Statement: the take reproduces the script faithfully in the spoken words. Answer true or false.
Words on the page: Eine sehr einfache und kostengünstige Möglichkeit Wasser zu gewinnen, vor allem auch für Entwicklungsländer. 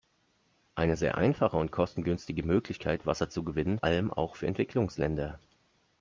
false